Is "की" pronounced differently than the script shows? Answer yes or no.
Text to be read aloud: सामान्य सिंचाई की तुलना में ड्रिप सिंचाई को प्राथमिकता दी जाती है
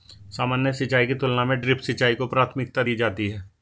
no